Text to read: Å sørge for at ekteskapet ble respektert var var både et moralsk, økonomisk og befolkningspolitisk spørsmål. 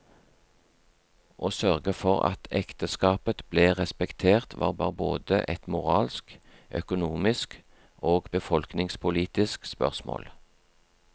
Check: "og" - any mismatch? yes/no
no